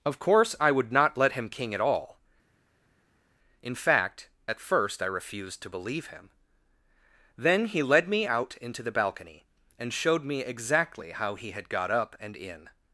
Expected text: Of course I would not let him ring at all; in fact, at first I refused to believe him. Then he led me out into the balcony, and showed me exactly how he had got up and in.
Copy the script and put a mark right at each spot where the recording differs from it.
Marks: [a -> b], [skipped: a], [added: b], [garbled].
Of course I would not let him [ring -> king] at all; in fact, at first I refused to believe him. Then he led me out into the balcony, and showed me exactly how he had got up and in.